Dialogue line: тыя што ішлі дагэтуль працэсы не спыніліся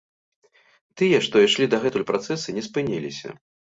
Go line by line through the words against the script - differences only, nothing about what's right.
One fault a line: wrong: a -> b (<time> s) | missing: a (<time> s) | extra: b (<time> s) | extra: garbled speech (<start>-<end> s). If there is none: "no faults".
no faults